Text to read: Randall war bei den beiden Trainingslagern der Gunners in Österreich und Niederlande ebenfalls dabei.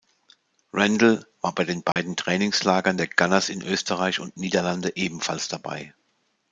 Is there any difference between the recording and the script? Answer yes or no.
no